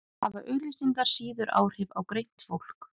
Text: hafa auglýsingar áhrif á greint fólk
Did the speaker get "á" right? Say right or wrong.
right